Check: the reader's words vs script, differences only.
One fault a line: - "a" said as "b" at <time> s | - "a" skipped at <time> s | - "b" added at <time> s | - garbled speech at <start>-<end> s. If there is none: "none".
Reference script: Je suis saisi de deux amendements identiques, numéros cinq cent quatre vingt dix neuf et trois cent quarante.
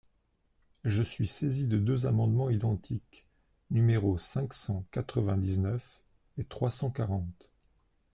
none